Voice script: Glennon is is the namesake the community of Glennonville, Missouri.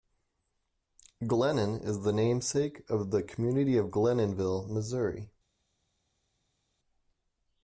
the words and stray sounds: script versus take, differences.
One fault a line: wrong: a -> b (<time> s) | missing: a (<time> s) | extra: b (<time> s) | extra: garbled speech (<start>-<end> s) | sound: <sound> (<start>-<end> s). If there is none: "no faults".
missing: is (2.0 s)
extra: of (2.9 s)